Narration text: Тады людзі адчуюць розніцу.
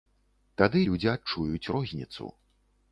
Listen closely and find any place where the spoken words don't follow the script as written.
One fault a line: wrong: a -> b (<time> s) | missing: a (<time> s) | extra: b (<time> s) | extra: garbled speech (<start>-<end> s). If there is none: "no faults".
no faults